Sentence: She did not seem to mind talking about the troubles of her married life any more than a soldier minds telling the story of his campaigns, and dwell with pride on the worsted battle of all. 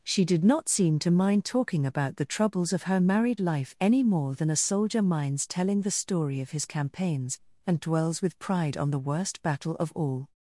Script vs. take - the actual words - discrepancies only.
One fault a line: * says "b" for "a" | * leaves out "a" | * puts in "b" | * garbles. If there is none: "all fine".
* says "dwells" for "dwell"
* says "worst" for "worsted"